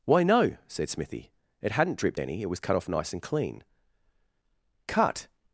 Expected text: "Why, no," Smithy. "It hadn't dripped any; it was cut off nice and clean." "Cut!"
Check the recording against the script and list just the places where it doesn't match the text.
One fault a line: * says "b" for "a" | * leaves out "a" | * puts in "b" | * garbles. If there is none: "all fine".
* puts in "said"